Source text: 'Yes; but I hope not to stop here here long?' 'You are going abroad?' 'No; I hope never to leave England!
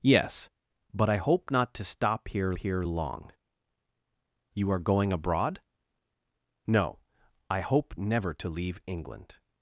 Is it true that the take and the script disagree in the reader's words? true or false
false